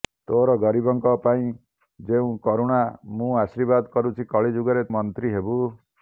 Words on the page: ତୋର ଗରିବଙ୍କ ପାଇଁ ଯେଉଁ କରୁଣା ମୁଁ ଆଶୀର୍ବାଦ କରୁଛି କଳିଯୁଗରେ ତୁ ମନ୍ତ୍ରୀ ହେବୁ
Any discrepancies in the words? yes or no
yes